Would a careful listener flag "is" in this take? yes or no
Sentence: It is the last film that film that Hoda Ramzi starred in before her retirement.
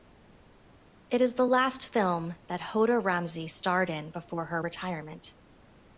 no